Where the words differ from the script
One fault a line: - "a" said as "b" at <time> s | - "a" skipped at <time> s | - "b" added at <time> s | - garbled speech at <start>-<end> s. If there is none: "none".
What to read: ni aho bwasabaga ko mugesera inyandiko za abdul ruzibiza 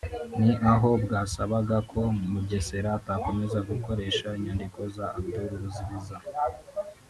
- "atakomeza gukoresha" added at 3.0 s